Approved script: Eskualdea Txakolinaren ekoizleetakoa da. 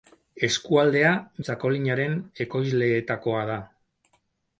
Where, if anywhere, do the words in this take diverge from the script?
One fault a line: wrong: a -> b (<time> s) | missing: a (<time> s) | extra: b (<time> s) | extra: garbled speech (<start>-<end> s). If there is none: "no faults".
no faults